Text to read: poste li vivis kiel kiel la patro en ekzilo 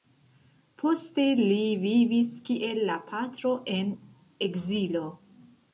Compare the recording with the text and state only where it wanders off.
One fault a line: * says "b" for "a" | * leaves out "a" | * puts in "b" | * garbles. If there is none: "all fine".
* leaves out "kiel"